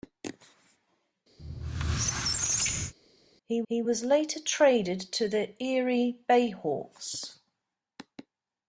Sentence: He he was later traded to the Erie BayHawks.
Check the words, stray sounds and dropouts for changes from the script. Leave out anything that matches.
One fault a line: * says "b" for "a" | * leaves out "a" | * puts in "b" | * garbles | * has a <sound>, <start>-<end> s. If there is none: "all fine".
* has a squeak, 1.4-2.9 s